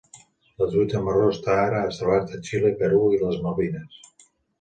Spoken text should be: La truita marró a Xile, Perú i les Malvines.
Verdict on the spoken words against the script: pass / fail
fail